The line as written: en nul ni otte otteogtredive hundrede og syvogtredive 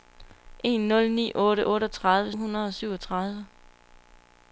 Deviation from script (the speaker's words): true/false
false